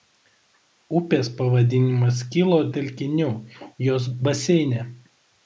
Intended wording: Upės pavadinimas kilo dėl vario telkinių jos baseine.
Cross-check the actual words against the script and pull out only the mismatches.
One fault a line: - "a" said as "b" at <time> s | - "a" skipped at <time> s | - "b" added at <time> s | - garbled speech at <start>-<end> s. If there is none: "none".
- "dėl vario" skipped at 2.6 s